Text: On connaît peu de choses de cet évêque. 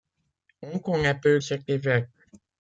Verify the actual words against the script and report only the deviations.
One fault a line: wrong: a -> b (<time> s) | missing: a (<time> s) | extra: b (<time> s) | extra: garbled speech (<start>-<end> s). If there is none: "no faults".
missing: de choses de (1.4 s)